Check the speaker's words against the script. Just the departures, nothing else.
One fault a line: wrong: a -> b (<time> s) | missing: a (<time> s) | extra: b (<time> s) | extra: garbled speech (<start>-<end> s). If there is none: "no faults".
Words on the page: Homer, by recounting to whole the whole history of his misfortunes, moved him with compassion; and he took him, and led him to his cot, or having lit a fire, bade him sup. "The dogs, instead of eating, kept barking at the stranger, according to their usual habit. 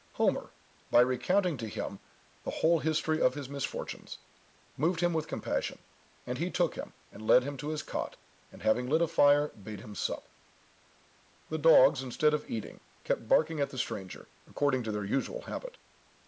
wrong: whole -> him (1.7 s)
wrong: or -> and (8.5 s)